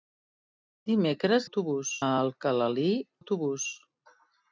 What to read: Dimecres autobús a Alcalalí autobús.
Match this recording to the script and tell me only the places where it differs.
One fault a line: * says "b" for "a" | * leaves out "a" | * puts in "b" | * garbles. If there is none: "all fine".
all fine